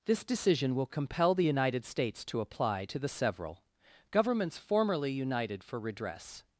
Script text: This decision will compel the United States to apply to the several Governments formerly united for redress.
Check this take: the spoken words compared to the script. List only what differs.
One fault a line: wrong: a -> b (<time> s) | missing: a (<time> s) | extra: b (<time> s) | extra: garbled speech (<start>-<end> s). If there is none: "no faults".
no faults